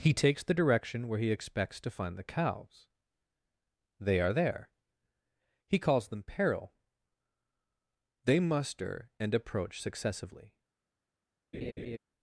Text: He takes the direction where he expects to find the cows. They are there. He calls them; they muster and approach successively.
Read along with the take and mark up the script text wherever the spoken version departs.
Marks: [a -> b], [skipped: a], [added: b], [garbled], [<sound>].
He takes the direction where he expects to find the cows. They are there. He calls them; [added: peril] they muster and approach successively. [laugh]